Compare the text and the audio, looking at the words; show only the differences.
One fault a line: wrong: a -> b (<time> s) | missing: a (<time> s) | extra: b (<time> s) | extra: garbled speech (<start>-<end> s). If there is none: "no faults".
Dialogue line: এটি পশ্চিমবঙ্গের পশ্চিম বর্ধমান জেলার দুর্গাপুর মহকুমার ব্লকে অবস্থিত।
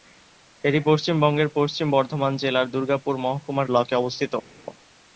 no faults